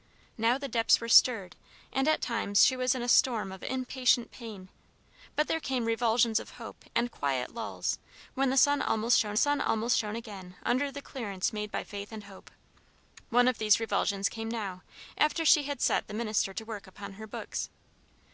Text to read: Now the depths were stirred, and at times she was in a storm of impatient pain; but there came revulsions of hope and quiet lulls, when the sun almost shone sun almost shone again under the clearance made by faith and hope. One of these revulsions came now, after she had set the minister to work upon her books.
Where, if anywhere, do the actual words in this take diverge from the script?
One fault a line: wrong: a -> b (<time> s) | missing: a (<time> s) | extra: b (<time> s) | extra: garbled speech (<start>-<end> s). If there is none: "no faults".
no faults